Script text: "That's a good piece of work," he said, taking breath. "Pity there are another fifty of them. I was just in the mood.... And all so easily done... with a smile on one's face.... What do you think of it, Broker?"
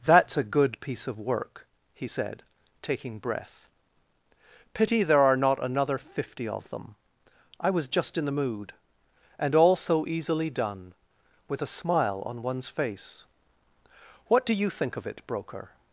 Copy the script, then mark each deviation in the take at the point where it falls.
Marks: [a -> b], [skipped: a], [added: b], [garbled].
"That's a good piece of work," he said, taking breath. "Pity there are [added: not] another fifty of them. I was just in the mood.... And all so easily done... with a smile on one's face.... What do you think of it, Broker?"